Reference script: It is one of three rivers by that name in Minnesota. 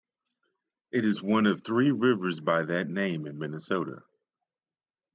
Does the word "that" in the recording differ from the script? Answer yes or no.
no